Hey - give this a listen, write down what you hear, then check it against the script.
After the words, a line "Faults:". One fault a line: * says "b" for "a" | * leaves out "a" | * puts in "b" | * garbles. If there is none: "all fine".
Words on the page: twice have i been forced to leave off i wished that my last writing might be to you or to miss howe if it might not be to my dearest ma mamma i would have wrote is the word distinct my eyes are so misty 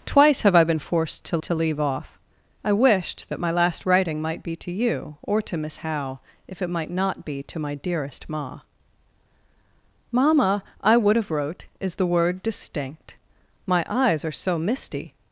twice have i been forced to to leave off i wished that my last writing might be to you or to miss howe if it might not be to my dearest ma mamma i would have wrote is the word distinct my eyes are so misty
Faults:
* puts in "to"